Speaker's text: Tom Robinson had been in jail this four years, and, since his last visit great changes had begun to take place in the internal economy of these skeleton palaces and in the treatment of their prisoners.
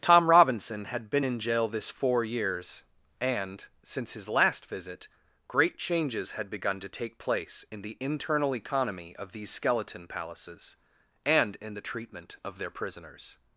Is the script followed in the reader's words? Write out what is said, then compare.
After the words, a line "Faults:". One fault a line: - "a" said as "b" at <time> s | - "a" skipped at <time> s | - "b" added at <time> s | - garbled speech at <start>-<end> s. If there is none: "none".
Tom Robinson had been in jail this four years, and, since his last visit great changes had begun to take place in the internal economy of these skeleton palaces and in the treatment of their prisoners.
Faults:
none